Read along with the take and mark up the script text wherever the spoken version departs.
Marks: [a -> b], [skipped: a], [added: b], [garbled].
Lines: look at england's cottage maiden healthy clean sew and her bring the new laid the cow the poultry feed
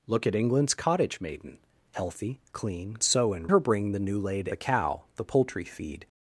look at england's cottage maiden healthy clean sew and her bring the new laid the cow the poultry feed